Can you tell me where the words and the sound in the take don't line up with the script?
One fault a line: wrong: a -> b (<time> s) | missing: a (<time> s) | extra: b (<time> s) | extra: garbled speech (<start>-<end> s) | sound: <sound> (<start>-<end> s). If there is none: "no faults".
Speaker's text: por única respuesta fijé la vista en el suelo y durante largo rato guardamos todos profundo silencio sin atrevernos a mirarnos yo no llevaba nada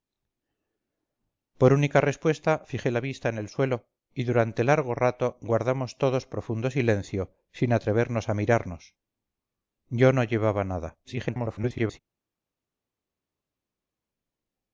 extra: garbled speech (11.0-12.0 s)